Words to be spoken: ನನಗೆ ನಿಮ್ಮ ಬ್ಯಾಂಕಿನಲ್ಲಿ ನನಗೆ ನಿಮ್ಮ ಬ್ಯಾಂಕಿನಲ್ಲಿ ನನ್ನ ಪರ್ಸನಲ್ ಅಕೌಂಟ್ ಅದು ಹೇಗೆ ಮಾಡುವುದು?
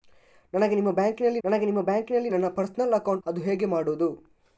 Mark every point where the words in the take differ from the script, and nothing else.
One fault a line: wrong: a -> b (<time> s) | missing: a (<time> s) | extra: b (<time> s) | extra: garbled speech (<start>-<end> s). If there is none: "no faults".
no faults